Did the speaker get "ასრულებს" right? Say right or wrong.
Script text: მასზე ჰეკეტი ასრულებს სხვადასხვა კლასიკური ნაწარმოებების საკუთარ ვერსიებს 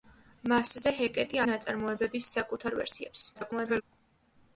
wrong